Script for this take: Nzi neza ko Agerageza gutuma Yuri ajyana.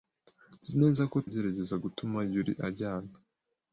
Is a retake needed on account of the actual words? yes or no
no